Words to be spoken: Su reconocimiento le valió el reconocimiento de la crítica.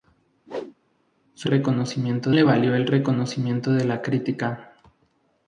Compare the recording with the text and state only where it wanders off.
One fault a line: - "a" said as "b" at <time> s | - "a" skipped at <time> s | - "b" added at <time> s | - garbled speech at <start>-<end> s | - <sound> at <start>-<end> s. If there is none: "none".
- whoosh at 0.5-0.7 s